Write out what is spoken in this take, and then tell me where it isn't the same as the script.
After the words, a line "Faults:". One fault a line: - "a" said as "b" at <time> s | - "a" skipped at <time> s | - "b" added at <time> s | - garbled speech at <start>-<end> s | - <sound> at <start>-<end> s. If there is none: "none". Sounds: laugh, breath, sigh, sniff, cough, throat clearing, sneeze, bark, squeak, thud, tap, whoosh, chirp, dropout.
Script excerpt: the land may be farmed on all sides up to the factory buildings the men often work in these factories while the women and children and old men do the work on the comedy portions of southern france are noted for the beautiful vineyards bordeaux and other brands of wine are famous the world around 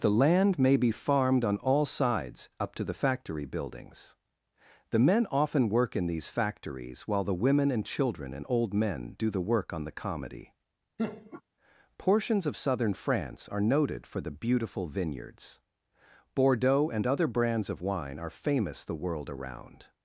the land may be farmed on all sides up to the factory buildings the men often work in these factories while the women and children and old men do the work on the comedy portions of southern france are noted for the beautiful vineyards bordeaux and other brands of wine are famous the world around
Faults:
- laugh at 11.0-11.4 s